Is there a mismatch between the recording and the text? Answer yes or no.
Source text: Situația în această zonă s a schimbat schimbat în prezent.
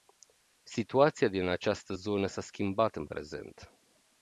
yes